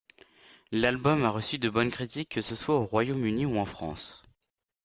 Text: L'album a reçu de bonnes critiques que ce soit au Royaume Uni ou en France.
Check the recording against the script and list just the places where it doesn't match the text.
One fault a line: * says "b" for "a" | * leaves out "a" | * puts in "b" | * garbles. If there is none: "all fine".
all fine